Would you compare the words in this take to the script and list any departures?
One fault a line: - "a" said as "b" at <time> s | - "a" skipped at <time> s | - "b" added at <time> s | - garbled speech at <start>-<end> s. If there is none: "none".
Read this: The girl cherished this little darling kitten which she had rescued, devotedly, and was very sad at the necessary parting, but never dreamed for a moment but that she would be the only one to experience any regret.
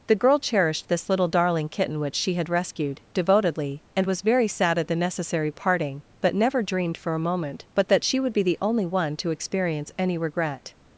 none